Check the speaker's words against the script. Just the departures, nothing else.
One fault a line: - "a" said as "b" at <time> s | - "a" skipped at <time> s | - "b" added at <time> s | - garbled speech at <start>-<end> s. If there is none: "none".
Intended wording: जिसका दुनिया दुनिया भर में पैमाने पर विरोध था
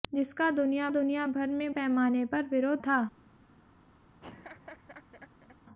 none